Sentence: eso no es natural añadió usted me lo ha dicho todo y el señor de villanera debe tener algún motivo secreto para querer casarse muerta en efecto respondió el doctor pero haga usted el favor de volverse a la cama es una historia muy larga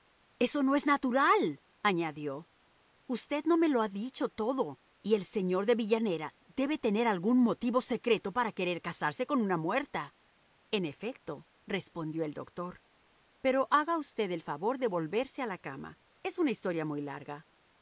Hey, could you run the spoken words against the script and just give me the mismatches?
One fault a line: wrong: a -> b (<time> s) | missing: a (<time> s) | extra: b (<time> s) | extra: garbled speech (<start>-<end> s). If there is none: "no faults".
extra: no (3.5 s)
extra: con una (9.2 s)